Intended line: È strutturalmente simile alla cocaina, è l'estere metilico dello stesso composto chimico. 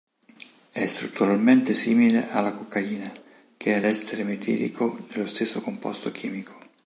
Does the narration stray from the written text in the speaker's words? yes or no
yes